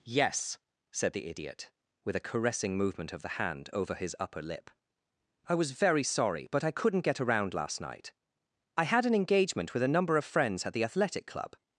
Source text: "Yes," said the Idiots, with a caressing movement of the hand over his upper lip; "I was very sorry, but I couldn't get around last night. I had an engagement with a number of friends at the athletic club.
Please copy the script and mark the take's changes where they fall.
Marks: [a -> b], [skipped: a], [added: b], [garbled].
"Yes," said the [Idiots, -> Idiot] with a caressing movement of the hand over his upper lip; "I was very sorry, but I couldn't get around last night. I had an engagement with a number of friends at the athletic club.